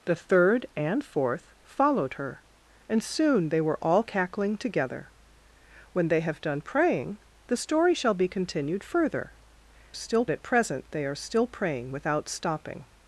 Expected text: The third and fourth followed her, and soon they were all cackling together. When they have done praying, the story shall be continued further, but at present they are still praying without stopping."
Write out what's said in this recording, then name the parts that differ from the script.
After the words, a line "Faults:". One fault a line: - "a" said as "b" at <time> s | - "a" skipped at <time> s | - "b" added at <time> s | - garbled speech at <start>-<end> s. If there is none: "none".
The third and fourth followed her, and soon they were all cackling together. When they have done praying, the story shall be continued further, still at present they are still praying without stopping."
Faults:
- "but" said as "still" at 9.9 s